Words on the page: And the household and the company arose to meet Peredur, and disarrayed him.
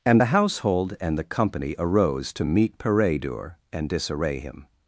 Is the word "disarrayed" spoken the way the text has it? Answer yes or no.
no